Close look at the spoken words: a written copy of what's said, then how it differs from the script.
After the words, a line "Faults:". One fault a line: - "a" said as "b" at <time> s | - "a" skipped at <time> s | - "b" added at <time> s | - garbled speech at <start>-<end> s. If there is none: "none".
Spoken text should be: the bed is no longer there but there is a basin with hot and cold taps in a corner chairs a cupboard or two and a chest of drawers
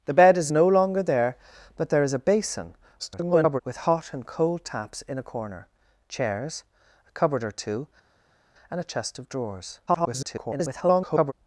the bed is no longer there but there is a basin [garbled] with hot and cold taps in a corner chairs a cupboard or two and a chest of drawers [garbled]
Faults:
- garbled speech at 3.0-3.6 s
- garbled speech at 9.9-11.3 s